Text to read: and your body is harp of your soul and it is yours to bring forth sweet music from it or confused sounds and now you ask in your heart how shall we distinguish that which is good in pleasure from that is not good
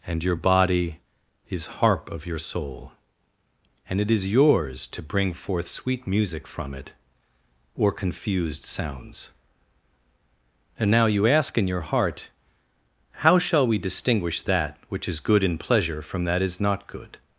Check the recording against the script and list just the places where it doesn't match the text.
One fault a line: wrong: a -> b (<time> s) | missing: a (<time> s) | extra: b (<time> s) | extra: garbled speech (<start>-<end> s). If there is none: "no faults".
no faults